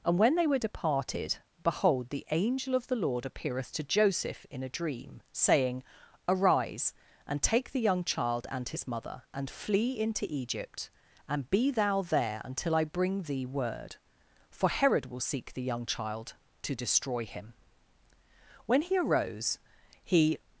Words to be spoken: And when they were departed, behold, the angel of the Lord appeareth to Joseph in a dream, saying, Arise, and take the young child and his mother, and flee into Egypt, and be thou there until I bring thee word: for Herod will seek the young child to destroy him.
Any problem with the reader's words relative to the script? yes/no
yes